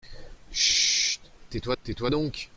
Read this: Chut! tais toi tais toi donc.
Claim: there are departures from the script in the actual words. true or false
false